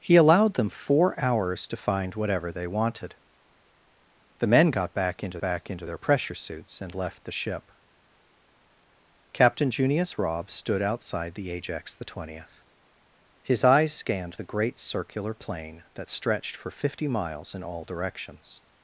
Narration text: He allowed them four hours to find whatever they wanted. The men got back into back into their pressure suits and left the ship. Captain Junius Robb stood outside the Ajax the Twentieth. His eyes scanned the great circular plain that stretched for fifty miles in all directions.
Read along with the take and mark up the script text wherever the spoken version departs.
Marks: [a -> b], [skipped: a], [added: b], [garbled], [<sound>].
He allowed them four hours to find whatever they wanted. The men got back into back into their pressure suits and left the ship. Captain Junius Robb stood outside the Ajax the Twentieth. His eyes scanned the great circular plain that stretched for fifty miles in all directions.